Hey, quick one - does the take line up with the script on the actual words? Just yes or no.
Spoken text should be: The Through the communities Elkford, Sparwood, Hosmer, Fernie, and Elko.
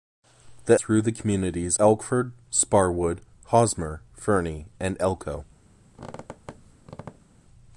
yes